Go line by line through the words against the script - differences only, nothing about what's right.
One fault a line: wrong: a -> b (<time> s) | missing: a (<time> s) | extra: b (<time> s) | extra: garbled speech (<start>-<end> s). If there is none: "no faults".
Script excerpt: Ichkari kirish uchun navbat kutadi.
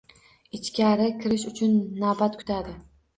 no faults